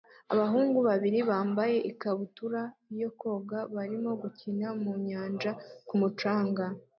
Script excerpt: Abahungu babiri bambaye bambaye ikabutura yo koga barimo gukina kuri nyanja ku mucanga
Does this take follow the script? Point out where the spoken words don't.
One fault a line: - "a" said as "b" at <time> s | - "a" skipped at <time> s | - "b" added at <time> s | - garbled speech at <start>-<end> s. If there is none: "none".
- "bambaye" skipped at 1.8 s
- "kuri" said as "mu" at 4.8 s